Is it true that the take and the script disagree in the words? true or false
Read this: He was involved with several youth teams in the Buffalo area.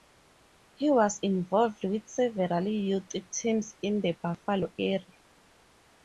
false